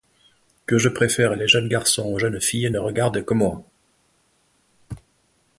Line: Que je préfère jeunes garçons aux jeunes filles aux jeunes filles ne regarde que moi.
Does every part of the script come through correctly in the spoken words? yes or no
no